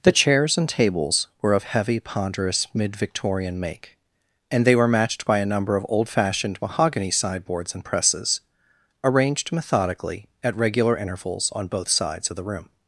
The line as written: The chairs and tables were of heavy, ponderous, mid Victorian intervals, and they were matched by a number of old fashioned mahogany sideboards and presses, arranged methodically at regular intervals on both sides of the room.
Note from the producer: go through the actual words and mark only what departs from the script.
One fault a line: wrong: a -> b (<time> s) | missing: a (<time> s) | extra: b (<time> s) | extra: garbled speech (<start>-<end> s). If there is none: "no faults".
wrong: intervals -> make (3.6 s)